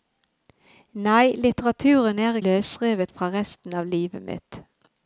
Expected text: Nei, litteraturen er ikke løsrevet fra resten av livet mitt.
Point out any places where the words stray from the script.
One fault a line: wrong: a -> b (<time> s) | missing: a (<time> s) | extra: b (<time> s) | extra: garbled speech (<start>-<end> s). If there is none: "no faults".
missing: ikke (2.4 s)